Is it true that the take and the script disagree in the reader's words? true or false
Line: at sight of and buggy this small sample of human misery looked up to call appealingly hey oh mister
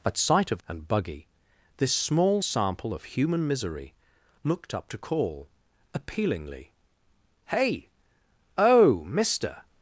false